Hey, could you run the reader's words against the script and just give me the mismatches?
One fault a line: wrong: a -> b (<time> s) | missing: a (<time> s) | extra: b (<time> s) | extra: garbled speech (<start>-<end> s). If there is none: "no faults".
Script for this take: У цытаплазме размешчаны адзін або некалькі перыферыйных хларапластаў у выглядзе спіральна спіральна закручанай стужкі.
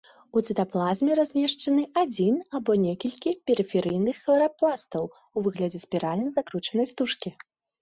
missing: спіральна (6.3 s)